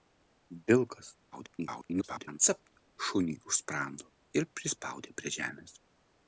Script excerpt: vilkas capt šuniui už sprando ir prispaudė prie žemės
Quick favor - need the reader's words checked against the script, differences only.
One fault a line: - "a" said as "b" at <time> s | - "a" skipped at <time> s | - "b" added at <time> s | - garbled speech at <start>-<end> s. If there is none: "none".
- garbled speech at 1.3-2.4 s